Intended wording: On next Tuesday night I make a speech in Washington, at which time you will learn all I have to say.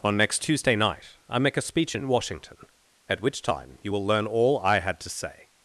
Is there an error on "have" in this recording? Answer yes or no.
yes